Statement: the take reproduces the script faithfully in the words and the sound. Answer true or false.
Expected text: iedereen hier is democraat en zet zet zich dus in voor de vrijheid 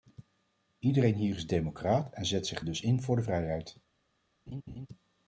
false